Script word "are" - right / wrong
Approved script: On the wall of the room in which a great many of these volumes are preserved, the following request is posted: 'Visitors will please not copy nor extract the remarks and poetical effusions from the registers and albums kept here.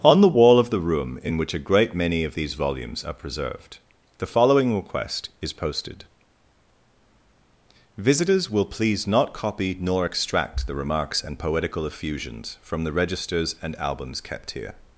right